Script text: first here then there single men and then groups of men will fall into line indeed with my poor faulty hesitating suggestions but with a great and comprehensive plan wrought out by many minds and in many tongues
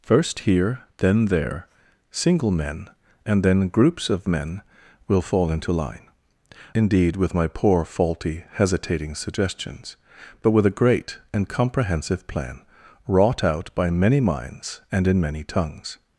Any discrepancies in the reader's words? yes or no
no